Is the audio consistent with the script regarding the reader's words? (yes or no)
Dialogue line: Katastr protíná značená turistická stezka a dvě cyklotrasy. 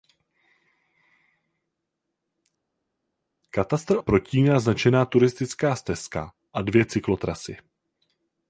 yes